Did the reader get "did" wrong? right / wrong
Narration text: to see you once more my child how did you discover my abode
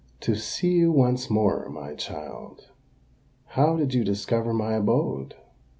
right